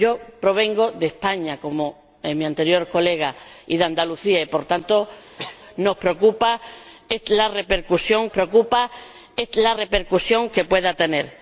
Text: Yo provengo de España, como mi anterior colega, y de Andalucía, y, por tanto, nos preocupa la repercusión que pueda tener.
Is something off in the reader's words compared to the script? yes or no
yes